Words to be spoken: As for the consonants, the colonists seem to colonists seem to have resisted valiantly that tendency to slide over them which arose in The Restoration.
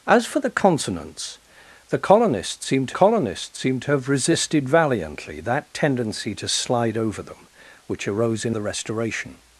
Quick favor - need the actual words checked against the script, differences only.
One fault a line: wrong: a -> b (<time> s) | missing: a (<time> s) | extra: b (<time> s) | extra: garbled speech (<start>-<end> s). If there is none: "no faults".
no faults